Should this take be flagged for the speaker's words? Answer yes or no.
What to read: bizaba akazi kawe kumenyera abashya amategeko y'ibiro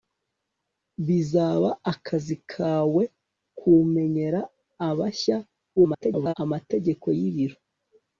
yes